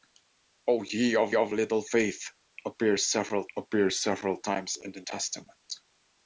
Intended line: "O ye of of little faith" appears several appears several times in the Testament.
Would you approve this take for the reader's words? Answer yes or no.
yes